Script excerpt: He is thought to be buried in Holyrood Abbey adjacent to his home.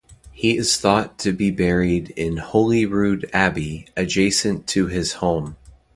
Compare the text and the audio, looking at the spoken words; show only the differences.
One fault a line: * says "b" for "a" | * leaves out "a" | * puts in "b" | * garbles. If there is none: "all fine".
all fine